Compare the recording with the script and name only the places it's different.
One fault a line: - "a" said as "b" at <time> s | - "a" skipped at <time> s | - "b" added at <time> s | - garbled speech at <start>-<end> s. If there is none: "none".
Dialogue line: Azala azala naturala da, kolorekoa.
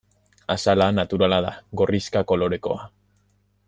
- "azala" skipped at 0.9 s
- "gorrixka" added at 1.8 s